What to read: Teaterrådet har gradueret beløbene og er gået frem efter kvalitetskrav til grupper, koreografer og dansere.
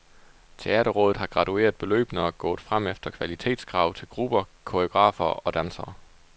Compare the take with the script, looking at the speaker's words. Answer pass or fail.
pass